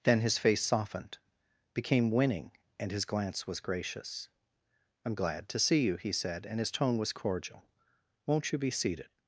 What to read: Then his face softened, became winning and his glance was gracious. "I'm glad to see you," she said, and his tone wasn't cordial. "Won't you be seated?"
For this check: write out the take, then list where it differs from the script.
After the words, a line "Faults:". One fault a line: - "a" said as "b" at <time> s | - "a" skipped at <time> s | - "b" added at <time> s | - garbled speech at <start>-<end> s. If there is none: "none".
Then his face softened, became winning and his glance was gracious. "I'm glad to see you," he said, and his tone was cordial. "Won't you be seated?"
Faults:
- "she" said as "he" at 6.0 s
- "wasn't" said as "was" at 7.0 s